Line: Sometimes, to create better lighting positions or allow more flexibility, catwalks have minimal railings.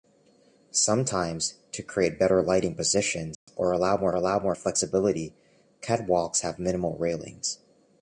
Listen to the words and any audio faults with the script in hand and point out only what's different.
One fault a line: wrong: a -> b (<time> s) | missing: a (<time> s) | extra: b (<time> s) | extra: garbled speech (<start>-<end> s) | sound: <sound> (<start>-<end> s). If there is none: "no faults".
sound: dropout (3.3-3.5 s)
extra: allow more (4.1 s)